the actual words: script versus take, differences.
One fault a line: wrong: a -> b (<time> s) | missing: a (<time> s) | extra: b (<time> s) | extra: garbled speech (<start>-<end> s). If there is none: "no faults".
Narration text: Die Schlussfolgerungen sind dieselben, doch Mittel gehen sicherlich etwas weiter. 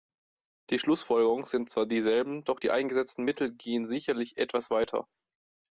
extra: zwar (1.7 s)
extra: die eingesetzten (2.6 s)